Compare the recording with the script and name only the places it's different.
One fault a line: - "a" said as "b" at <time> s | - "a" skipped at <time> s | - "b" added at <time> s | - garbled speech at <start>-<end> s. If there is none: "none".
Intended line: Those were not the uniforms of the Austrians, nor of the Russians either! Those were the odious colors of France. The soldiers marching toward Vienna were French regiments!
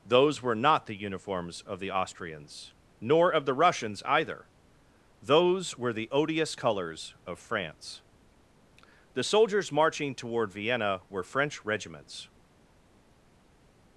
none